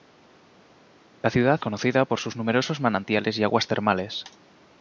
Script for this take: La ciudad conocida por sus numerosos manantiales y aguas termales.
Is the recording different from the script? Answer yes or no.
no